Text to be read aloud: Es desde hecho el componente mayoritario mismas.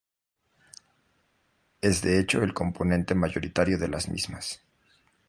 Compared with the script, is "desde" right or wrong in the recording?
wrong